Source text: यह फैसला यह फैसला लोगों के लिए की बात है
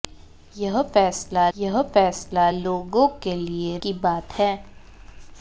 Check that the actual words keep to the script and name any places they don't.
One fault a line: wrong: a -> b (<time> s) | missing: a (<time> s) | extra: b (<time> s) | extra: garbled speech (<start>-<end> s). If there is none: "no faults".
no faults